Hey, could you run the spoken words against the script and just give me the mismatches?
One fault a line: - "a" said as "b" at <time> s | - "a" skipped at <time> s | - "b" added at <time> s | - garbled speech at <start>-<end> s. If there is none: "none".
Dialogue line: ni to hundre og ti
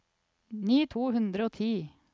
none